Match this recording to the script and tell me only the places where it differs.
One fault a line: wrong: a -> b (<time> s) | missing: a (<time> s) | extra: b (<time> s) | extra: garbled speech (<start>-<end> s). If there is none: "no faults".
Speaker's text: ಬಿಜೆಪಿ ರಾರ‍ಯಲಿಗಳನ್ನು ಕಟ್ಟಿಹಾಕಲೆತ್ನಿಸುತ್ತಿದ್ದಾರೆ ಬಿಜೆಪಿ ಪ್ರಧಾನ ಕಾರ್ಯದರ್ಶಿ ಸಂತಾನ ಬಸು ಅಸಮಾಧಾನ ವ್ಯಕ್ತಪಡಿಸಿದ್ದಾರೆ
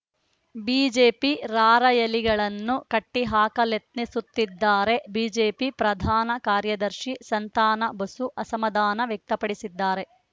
no faults